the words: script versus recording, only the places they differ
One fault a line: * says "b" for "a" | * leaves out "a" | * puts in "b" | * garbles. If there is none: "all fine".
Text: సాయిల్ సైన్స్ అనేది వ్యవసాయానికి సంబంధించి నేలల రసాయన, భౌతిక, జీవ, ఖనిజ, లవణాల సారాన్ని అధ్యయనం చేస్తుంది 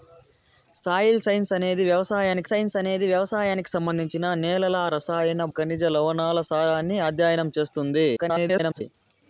* puts in "సైన్స్ అనేది వ్యవసాయానికి"
* leaves out "భౌతిక జీవ"
* garbles